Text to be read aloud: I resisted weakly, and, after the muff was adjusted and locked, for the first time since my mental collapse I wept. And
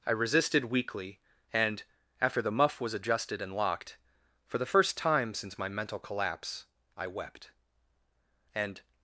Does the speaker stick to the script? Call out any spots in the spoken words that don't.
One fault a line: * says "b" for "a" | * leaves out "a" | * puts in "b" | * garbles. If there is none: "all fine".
all fine